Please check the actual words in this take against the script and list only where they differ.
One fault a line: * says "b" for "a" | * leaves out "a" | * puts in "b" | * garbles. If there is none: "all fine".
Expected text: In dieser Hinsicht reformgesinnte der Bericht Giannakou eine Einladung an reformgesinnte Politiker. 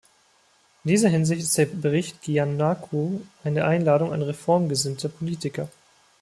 * says "ist" for "reformgesinnte"